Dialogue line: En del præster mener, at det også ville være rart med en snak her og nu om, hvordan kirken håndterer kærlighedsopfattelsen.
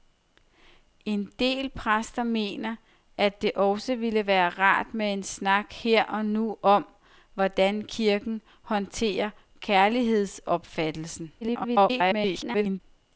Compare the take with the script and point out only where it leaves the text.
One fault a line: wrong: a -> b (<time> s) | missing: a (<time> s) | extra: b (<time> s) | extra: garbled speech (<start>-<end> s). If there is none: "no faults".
extra: garbled speech (11.4-12.8 s)